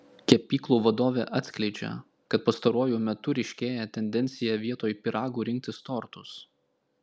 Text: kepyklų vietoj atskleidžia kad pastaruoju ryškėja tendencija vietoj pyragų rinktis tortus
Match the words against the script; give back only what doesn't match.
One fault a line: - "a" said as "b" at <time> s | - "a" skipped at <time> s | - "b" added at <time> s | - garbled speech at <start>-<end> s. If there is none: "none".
- "vietoj" said as "vadovė" at 0.8 s
- "metu" added at 3.1 s